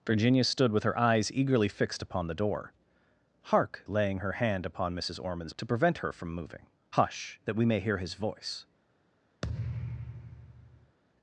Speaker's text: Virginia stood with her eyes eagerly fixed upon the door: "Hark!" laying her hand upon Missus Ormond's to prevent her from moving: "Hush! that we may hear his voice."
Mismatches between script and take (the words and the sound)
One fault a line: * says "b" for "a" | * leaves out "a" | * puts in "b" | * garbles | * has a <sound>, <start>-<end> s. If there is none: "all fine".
* has a thud, 9.4-11.0 s